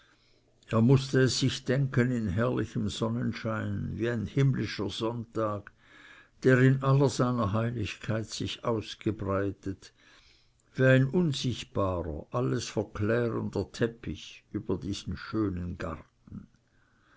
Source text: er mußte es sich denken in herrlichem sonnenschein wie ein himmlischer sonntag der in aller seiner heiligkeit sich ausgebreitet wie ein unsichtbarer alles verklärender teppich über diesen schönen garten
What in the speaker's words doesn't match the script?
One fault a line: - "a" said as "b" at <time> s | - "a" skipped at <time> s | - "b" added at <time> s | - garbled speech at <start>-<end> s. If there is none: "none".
none